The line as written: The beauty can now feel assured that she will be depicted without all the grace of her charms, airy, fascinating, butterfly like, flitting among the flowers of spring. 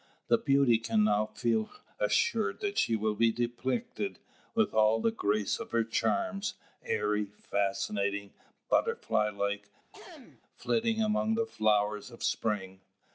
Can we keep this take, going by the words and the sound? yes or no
no